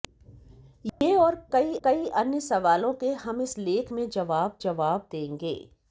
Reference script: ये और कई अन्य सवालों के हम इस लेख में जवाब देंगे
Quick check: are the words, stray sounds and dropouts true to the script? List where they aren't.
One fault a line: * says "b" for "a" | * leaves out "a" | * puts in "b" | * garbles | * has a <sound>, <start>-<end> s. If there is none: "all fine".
* has a dropout, 0.9-1.0 s
* puts in "कई"
* puts in "जवाब"